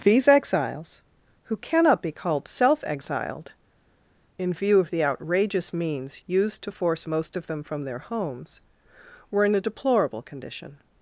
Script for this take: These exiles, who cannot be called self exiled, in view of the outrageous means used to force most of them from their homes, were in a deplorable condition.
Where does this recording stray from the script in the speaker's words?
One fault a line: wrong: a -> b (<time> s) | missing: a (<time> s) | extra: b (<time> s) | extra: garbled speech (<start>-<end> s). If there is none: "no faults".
no faults